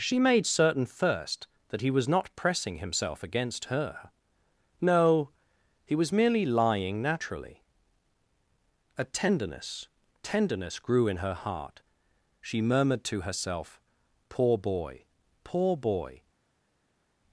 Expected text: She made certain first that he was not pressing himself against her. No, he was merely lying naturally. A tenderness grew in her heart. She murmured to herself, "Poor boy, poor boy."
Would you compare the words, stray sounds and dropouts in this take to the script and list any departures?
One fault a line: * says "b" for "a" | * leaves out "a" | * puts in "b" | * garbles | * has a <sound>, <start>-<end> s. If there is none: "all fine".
* puts in "tenderness"